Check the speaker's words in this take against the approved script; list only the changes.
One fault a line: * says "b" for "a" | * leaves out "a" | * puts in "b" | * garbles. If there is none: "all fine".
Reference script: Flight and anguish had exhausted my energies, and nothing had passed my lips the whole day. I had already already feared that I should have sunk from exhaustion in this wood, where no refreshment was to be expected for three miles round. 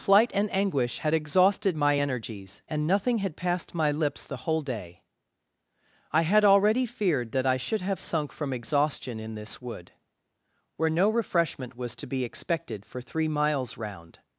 * leaves out "already"